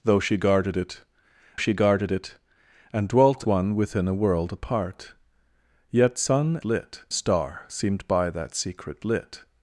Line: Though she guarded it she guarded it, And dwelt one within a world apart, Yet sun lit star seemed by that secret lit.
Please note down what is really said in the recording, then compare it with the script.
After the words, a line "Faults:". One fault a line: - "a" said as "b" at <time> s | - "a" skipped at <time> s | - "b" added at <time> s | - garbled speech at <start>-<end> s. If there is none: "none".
Though she guarded it she guarded it, And dwelt one within a world apart, Yet sun lit star seemed by that secret lit.
Faults:
none